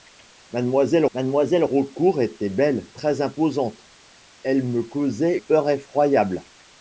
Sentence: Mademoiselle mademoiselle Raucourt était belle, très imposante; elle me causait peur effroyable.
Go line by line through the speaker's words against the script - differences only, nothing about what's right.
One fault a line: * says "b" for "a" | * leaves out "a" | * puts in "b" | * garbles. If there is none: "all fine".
all fine